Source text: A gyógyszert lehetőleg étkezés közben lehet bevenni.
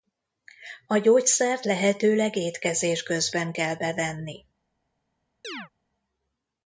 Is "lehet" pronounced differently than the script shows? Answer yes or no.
yes